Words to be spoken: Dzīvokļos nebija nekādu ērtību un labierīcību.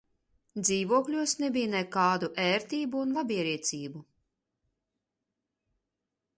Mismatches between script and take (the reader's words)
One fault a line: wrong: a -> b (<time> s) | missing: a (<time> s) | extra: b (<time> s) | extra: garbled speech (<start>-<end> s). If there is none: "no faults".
no faults